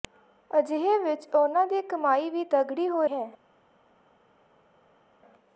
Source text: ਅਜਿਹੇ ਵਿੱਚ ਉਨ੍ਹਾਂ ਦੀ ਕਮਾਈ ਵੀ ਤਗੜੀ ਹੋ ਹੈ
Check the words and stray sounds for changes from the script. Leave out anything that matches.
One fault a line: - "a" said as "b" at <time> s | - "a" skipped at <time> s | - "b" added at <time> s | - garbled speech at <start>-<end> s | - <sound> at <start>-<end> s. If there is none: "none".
none